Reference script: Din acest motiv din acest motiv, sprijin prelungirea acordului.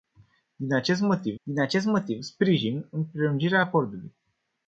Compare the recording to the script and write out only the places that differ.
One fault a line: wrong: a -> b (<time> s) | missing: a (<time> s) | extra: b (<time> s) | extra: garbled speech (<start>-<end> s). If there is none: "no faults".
no faults